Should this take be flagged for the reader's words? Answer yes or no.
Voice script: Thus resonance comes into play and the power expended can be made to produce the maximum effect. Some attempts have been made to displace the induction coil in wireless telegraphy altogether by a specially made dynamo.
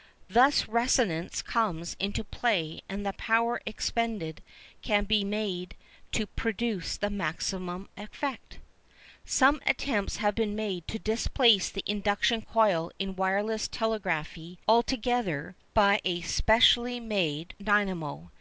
no